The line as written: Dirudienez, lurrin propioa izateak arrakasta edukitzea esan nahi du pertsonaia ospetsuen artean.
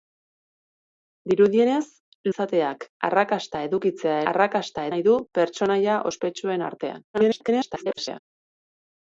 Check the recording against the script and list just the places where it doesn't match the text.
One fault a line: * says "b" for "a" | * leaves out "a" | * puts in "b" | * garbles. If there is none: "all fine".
* leaves out "lurrin propioa"
* says "arrakasta" for "esan"
* garbles